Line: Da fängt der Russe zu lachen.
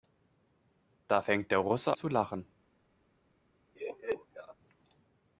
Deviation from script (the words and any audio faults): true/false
true